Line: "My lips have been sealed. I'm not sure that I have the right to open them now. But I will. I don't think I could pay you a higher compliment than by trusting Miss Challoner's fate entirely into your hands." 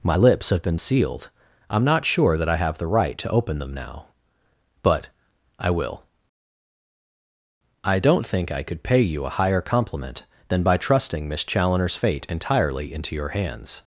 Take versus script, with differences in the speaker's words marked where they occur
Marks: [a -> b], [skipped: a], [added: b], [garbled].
"My lips have been sealed. I'm not sure that I have the right to open them now. But I will. I don't think I could pay you a higher compliment than by trusting Miss Challoner's fate entirely into your hands."